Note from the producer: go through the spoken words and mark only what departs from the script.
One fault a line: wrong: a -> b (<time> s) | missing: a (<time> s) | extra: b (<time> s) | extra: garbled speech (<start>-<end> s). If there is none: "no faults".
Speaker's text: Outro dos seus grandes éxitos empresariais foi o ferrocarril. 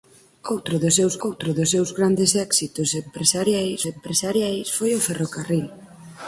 extra: outro dos seus (1.3 s)
extra: empresariais (3.9 s)